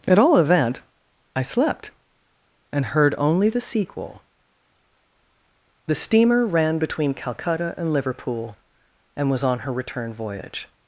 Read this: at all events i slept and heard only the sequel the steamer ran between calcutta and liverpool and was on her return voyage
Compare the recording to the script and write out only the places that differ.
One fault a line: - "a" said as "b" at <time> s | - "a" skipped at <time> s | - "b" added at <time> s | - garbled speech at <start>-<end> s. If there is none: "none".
- "events" said as "event" at 0.4 s